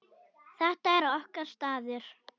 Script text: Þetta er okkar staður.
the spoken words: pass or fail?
pass